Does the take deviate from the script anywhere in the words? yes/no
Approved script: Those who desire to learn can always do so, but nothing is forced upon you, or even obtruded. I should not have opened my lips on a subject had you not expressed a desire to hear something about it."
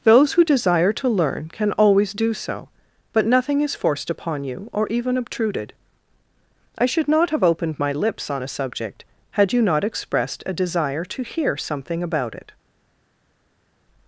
no